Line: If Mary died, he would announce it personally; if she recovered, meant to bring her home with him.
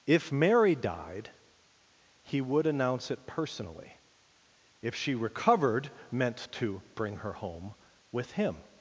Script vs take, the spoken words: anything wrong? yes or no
no